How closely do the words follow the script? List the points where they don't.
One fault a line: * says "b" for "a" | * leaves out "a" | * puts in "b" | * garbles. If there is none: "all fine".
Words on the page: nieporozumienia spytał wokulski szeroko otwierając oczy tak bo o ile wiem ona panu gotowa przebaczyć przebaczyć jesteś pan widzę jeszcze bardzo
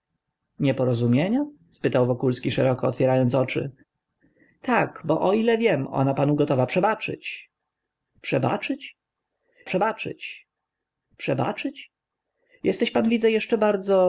* puts in "przebaczyć przebaczyć"